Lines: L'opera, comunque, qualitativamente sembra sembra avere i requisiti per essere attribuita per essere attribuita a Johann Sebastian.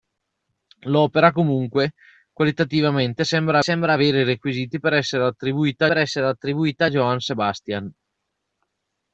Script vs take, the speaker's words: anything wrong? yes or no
no